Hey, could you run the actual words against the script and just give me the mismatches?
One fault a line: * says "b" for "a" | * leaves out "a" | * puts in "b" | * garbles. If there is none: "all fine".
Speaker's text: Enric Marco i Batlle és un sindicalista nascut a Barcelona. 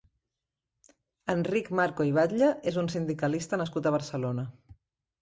all fine